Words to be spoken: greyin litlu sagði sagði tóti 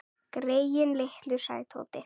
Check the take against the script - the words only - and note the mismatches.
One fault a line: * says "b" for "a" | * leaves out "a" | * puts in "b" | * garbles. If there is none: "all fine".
* leaves out "sagði"